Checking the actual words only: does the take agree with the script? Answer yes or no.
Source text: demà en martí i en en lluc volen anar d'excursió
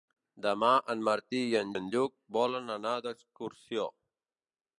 yes